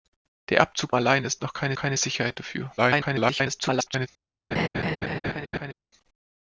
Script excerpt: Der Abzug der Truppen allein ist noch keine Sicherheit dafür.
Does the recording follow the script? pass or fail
fail